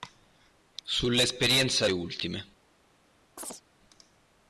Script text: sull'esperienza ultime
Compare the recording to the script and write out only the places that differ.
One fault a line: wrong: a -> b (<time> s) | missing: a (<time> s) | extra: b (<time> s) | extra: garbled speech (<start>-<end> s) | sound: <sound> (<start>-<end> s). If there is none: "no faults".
sound: chirp (3.4-3.6 s)